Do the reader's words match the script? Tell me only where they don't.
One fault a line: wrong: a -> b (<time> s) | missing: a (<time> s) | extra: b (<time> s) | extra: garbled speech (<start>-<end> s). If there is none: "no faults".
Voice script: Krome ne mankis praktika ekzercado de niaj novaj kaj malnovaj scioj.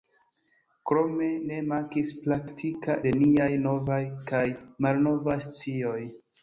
missing: ekzercado (3.0 s)